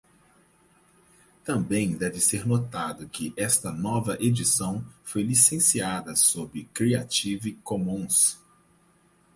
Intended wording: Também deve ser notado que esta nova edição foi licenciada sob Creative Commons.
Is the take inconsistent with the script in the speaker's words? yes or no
no